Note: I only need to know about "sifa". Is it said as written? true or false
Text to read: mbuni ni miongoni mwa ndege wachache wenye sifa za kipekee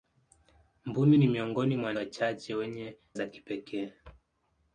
false